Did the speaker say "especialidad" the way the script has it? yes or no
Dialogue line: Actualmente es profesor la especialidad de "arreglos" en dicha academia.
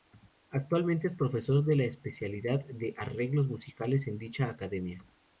yes